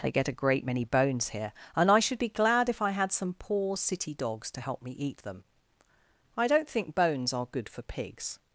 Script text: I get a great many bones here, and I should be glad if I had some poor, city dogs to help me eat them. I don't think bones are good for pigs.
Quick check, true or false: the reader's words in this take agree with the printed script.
false